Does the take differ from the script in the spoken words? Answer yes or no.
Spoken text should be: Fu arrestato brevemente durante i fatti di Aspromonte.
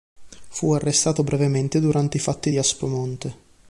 no